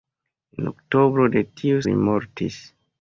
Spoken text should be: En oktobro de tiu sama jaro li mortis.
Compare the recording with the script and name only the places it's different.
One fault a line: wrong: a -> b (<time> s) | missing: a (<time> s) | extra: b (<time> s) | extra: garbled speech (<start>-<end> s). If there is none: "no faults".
missing: sama jaro (1.9 s)